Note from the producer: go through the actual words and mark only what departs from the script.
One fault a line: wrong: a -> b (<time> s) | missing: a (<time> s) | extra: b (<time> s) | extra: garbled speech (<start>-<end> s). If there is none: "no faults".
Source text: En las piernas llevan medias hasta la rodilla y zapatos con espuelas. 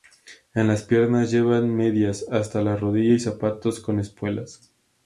no faults